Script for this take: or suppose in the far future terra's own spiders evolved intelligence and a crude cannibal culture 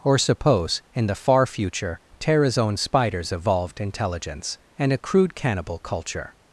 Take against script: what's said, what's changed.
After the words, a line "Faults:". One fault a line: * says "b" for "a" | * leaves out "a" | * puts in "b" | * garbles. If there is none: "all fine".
or suppose in the far future terra's own spiders evolved intelligence and a crude cannibal culture
Faults:
all fine